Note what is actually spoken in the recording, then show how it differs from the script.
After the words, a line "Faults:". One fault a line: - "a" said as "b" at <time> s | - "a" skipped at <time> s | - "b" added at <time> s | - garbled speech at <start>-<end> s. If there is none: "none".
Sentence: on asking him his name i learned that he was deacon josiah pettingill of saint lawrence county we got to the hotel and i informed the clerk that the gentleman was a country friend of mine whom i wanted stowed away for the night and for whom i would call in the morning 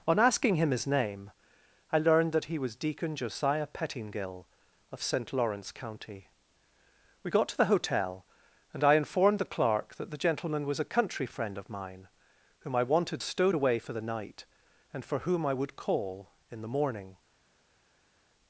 on asking him his name i learned that he was deacon josiah pettingill of saint lawrence county we got to the hotel and i informed the clerk that the gentleman was a country friend of mine whom i wanted stowed away for the night and for whom i would call in the morning
Faults:
none